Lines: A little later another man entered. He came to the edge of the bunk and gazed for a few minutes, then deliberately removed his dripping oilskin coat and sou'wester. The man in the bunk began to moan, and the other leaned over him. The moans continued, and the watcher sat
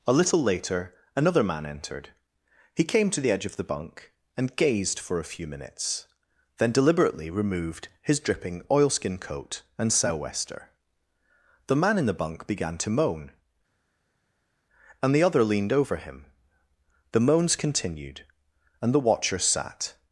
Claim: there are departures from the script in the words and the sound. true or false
false